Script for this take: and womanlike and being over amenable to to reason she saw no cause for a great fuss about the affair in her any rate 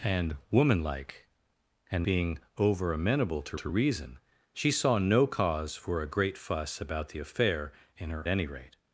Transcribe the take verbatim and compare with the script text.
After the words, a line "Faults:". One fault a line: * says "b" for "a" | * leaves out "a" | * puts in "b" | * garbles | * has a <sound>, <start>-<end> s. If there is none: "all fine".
and womanlike and being over amenable to to reason she saw no cause for a great fuss about the affair in her any rate
Faults:
all fine